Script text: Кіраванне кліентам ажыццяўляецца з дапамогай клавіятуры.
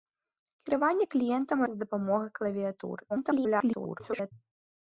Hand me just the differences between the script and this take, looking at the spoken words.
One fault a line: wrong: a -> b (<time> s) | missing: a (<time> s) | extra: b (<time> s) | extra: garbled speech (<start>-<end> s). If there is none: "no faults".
missing: ажыццяўляецца (1.6 s)
extra: garbled speech (3.1-4.3 s)